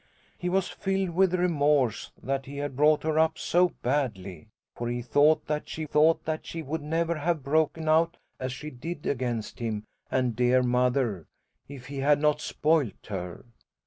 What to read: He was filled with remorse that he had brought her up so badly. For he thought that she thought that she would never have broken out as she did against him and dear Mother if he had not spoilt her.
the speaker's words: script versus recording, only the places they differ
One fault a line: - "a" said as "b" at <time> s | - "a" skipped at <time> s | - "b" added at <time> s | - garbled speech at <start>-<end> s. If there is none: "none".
none